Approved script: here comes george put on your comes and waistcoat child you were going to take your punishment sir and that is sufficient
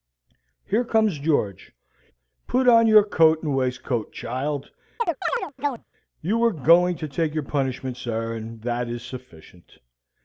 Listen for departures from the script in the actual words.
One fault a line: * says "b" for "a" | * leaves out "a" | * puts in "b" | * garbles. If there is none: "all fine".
* says "coat" for "comes"